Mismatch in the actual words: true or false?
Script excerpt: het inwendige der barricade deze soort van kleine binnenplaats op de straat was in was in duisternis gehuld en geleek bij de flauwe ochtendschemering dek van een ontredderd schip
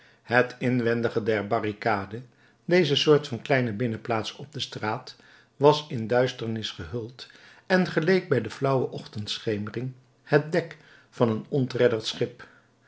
true